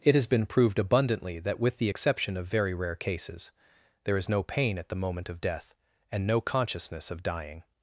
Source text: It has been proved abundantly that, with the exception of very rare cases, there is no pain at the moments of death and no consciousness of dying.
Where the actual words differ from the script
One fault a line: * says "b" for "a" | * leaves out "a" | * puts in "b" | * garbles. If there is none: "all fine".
* says "moment" for "moments"